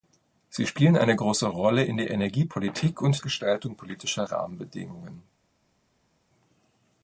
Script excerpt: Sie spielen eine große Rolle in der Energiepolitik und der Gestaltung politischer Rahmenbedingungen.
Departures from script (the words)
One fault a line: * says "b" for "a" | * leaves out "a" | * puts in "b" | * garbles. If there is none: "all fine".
* leaves out "der"